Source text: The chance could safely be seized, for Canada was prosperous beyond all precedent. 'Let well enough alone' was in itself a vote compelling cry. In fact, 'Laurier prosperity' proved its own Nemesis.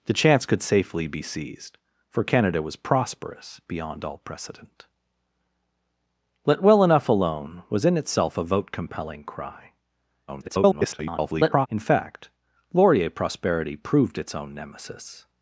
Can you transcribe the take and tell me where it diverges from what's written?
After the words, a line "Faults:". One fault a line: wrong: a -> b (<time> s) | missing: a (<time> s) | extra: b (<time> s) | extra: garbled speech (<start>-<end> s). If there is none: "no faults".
The chance could safely be seized, for Canada was prosperous beyond all precedent. 'Let well enough alone' was in itself a vote compelling cry. [garbled] In fact, 'Laurier prosperity' proved its own Nemesis.
Faults:
extra: garbled speech (10.3-11.7 s)